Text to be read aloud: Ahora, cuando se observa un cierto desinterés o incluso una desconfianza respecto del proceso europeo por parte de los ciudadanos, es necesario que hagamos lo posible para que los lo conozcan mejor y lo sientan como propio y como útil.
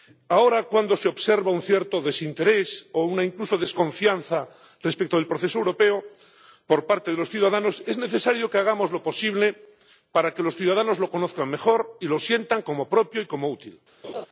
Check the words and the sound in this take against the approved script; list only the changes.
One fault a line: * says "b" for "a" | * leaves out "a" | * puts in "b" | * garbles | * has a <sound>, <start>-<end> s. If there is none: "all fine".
* puts in "ciudadanos"
* has a laugh, 14.0-14.3 s